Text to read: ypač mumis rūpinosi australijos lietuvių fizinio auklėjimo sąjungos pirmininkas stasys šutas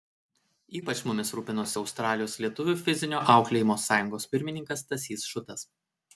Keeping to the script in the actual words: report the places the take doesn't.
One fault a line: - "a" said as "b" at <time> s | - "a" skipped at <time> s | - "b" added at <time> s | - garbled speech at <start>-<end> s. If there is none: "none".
none